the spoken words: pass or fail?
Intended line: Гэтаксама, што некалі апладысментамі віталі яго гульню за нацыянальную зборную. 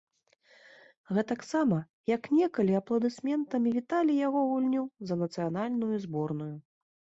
fail